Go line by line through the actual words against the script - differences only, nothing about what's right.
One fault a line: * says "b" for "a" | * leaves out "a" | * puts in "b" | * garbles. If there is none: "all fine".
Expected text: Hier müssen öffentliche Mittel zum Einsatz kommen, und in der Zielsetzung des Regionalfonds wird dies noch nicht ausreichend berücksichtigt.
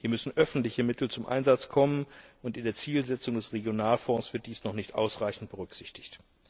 all fine